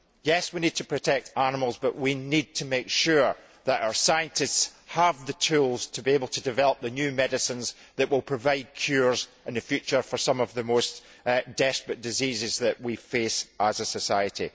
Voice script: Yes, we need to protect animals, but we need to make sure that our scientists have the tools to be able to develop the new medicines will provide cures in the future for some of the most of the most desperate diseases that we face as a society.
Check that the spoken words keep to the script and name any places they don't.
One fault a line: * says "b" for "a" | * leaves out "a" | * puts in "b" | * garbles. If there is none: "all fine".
* puts in "that"
* leaves out "of the most"